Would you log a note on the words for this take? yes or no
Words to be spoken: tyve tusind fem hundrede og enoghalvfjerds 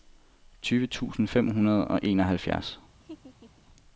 no